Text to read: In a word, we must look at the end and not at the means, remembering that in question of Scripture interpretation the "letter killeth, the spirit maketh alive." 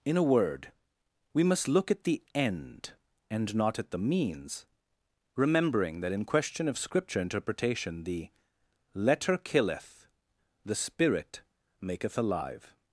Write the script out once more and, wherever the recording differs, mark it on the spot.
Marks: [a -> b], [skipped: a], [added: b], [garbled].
In a word, we must look at the end and not at the means, remembering that in question of Scripture interpretation the "letter killeth, the spirit maketh alive."